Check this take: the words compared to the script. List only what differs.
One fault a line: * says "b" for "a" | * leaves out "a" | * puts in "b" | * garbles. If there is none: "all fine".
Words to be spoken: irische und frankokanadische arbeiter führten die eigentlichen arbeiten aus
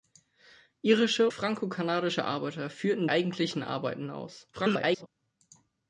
* leaves out "und"
* leaves out "die"
* garbles